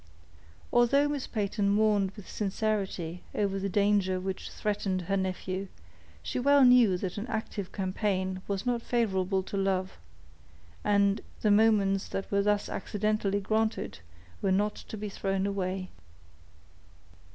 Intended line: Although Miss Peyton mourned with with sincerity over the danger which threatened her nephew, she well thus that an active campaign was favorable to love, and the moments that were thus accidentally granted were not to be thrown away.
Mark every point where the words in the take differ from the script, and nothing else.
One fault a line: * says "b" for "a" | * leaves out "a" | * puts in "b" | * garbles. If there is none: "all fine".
* leaves out "with"
* says "knew" for "thus"
* puts in "not"